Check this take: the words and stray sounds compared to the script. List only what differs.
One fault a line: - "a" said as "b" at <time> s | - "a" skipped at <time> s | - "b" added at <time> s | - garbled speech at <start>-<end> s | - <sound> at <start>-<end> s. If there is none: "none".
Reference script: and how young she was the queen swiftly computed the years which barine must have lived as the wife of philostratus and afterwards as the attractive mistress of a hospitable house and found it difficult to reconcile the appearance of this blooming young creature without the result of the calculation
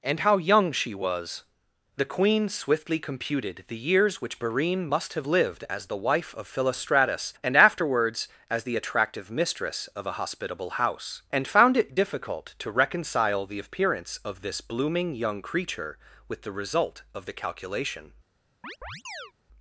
- "without" said as "with" at 16.3 s
- chirp at 18.6-19.3 s